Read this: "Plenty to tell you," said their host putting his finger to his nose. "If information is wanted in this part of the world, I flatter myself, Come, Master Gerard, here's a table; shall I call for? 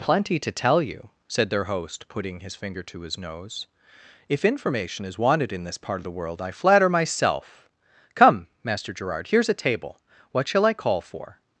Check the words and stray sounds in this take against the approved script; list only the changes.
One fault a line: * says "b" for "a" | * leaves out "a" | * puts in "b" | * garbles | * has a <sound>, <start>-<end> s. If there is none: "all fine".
* puts in "what"